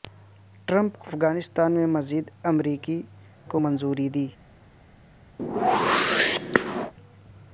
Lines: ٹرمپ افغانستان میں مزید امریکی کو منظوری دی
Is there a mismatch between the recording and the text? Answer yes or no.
no